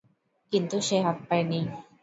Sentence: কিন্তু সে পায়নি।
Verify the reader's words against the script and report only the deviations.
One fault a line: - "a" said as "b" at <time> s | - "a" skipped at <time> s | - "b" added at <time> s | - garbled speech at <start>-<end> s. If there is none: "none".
- "হাত" added at 1.0 s